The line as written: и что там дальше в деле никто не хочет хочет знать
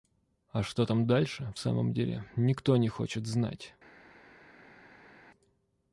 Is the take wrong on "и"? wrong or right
wrong